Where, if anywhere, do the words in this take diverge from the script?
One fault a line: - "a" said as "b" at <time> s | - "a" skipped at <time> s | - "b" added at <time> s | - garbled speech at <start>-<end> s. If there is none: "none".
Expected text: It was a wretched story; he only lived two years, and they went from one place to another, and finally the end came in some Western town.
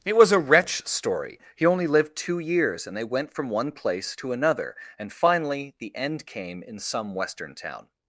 - "wretched" said as "wretch" at 0.4 s